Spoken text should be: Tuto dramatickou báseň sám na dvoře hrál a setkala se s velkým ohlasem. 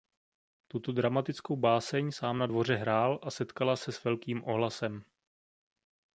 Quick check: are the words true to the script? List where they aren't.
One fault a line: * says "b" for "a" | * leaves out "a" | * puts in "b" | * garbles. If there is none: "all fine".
all fine